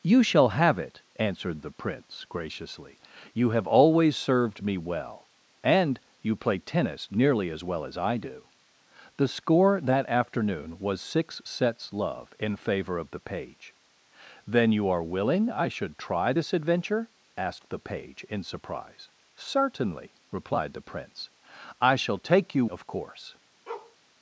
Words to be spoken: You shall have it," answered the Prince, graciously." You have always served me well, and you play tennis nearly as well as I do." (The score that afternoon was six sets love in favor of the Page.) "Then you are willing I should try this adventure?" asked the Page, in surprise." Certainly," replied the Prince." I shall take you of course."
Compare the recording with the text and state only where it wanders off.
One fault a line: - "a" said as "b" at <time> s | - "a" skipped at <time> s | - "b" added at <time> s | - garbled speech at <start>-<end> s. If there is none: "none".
none